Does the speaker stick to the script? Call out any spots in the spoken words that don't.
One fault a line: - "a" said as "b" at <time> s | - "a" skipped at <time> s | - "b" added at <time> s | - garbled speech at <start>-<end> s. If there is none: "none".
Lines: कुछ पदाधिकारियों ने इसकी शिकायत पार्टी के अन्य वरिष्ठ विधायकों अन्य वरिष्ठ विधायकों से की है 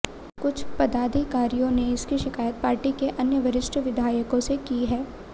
- "अन्य वरिष्ठ विधायकों" skipped at 4.4 s